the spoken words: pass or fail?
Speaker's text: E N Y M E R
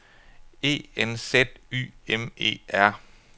fail